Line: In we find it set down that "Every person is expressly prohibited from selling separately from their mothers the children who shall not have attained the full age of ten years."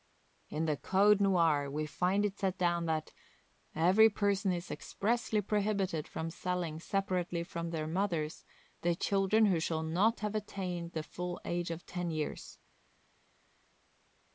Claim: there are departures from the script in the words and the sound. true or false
true